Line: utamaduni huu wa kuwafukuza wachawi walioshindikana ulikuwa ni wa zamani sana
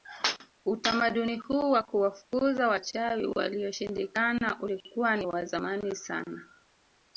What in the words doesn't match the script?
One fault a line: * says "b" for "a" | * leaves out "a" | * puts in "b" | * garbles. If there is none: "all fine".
all fine